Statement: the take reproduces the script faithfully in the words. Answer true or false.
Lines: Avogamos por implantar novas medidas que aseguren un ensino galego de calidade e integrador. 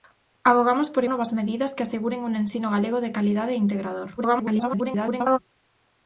false